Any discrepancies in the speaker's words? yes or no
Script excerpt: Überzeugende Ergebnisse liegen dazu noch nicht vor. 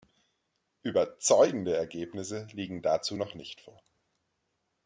no